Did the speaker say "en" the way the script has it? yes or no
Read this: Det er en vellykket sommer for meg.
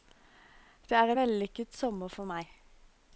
no